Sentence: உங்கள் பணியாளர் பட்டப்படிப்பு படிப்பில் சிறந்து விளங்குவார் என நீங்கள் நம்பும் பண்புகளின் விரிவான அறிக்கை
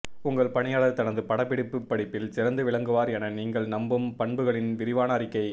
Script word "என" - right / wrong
right